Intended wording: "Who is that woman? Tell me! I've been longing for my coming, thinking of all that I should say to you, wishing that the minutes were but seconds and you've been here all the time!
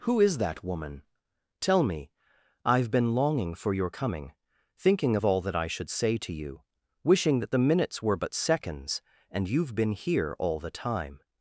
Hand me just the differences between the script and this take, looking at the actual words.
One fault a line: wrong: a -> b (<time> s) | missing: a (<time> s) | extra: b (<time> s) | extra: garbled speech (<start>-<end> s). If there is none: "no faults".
wrong: my -> your (3.7 s)